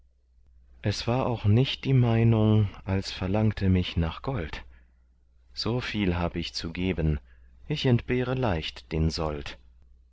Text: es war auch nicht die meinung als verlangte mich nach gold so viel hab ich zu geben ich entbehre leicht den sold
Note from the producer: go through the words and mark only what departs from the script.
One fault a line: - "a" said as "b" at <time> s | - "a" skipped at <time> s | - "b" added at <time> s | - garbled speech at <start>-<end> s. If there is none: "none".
none